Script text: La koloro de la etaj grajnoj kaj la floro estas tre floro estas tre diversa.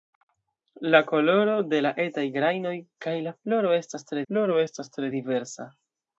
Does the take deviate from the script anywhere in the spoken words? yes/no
no